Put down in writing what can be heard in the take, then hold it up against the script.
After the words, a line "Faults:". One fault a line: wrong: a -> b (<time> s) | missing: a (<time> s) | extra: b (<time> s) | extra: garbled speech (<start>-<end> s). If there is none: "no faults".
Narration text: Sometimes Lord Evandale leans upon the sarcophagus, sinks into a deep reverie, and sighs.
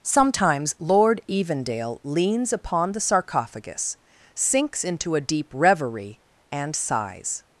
Sometimes Lord Evandale leans upon the sarcophagus, sinks into a deep reverie, and sighs.
Faults:
no faults